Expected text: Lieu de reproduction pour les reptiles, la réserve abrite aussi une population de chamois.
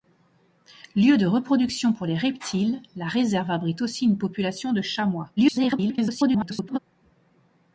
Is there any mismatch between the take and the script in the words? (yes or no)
yes